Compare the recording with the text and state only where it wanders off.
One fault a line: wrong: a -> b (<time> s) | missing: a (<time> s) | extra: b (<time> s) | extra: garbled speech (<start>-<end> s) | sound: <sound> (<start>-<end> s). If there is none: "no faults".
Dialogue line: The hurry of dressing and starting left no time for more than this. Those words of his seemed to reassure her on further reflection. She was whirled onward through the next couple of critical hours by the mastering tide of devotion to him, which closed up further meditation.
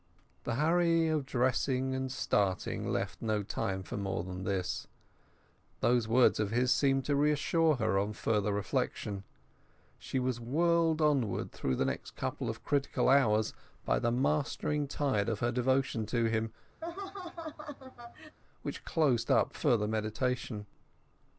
extra: her (15.4 s)
sound: laugh (16.8-18.4 s)